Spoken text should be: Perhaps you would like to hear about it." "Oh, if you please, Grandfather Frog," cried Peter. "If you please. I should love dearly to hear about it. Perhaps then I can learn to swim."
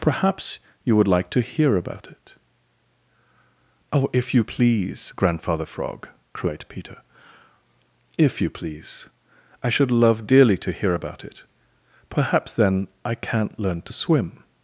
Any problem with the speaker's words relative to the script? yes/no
yes